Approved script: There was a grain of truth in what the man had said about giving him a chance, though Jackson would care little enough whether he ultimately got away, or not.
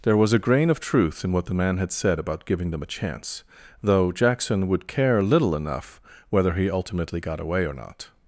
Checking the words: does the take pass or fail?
fail